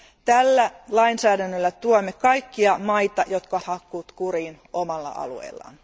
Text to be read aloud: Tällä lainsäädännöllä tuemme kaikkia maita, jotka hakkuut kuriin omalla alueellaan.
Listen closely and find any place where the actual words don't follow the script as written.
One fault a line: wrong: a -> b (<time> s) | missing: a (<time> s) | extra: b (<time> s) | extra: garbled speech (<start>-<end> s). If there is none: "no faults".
no faults